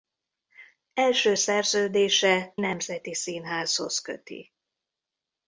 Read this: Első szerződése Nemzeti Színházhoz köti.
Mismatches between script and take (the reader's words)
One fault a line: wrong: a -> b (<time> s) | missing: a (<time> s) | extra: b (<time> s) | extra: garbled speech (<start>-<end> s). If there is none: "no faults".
no faults